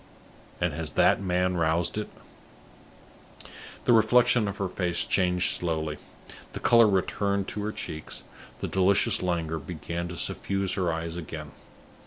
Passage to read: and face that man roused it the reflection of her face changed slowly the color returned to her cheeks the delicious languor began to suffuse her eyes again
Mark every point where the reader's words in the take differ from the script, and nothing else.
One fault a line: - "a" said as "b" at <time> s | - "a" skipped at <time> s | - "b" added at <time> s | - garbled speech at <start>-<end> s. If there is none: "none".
- "face" said as "has" at 0.7 s